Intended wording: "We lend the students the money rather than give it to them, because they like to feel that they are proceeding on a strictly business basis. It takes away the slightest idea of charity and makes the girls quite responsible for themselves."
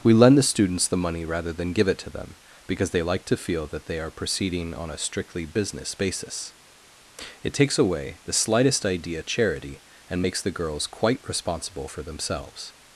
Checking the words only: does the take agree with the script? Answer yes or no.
no